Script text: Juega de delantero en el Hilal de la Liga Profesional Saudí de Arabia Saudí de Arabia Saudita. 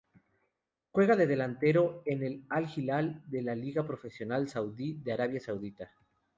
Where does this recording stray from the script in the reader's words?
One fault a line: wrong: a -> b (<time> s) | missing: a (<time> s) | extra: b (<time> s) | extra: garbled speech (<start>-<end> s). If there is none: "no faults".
extra: Al (2.5 s)
missing: Saudí de Arabia (5.4 s)